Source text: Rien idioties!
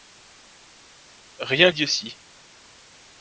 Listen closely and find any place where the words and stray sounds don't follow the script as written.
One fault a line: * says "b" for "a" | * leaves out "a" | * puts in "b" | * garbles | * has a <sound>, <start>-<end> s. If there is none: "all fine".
all fine